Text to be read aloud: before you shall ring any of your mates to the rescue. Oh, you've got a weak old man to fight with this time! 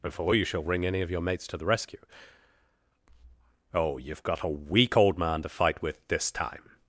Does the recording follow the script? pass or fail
pass